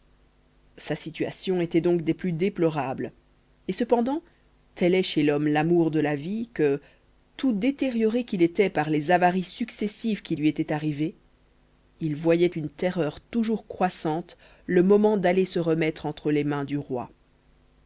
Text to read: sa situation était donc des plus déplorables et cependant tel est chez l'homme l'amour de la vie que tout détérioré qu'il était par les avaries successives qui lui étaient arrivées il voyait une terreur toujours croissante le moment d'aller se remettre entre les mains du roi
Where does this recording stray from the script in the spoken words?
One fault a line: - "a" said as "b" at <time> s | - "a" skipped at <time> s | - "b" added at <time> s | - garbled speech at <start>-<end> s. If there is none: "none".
none